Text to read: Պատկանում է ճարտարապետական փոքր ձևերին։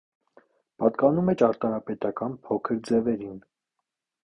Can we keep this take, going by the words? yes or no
yes